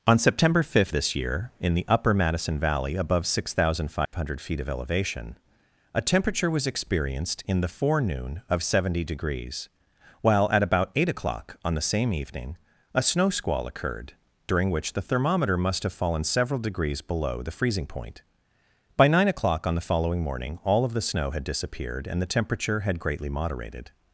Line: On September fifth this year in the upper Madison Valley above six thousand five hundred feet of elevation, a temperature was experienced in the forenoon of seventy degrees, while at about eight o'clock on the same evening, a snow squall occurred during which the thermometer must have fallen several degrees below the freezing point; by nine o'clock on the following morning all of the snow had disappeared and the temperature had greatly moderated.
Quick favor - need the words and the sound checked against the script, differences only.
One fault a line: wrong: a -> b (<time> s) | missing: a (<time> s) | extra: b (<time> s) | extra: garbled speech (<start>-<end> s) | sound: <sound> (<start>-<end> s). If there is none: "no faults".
sound: dropout (4.1-4.1 s)